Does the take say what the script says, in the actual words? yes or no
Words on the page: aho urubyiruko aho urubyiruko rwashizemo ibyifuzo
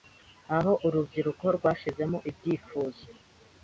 no